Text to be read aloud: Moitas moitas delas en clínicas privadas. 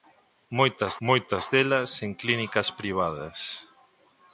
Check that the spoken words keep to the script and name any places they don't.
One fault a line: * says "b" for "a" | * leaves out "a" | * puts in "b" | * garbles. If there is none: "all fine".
all fine